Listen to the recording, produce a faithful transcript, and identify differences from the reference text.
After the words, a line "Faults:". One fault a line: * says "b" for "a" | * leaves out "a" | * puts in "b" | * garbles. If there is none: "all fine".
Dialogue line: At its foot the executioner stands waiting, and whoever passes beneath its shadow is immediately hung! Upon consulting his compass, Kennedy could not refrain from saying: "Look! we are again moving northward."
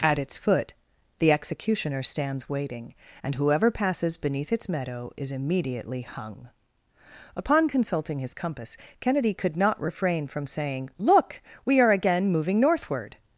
At its foot the executioner stands waiting, and whoever passes beneath its meadow is immediately hung! Upon consulting his compass, Kennedy could not refrain from saying: "Look! we are again moving northward."
Faults:
* says "meadow" for "shadow"